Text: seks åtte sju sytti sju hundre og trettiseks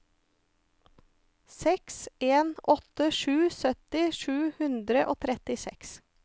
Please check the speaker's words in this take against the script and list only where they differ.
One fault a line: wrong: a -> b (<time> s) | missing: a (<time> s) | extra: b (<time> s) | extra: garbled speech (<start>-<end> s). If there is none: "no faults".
extra: en (2.3 s)